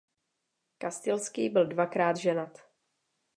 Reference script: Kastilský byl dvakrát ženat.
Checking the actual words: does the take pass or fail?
pass